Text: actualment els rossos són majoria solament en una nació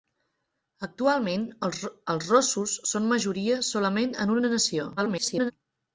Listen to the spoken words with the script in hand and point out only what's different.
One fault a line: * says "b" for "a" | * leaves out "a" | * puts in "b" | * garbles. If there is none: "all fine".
* garbles